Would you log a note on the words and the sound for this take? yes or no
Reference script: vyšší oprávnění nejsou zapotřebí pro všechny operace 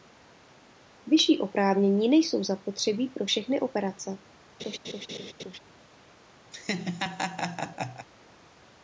yes